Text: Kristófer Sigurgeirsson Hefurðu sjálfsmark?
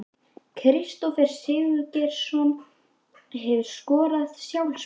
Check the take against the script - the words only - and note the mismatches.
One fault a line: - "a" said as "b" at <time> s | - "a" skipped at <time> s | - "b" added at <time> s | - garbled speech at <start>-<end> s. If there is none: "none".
- "skorað" added at 3.7 s